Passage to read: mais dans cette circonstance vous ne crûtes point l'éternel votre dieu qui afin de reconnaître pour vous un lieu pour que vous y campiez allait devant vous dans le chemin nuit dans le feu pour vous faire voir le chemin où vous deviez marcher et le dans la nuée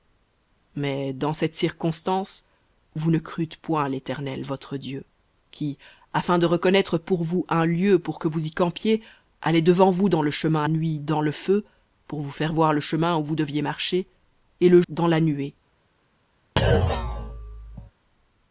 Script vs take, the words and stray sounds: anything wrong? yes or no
yes